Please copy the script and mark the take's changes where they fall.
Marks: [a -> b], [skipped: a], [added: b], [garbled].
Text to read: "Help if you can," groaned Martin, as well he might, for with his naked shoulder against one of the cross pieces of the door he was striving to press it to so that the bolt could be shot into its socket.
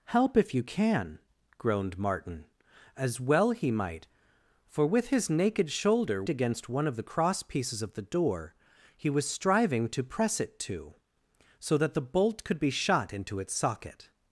"Help if you can," groaned Martin, as well he might, for with his naked shoulder against one of the cross pieces of the door he was striving to press it to so that the bolt could be shot into its socket.